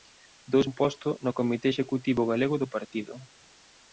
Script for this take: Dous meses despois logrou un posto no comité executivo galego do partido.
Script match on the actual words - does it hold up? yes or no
no